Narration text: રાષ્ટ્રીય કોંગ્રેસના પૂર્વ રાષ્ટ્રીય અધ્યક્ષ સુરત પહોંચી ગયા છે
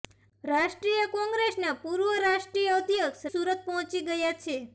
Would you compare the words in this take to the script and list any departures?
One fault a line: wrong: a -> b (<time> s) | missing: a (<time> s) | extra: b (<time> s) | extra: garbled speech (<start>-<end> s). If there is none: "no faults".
no faults